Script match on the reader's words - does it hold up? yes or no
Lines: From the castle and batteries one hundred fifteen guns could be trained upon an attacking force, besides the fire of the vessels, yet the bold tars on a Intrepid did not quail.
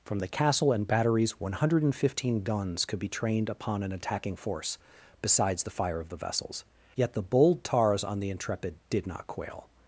no